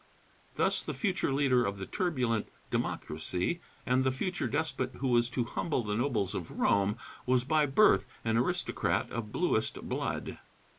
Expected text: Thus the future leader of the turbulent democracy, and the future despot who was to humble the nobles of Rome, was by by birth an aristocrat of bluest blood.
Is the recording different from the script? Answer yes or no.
yes